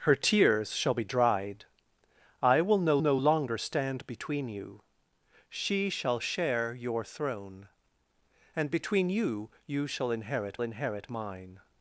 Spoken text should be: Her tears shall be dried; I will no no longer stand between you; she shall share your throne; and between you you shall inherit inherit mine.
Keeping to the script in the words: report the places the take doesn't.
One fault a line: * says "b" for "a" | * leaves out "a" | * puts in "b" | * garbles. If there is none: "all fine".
all fine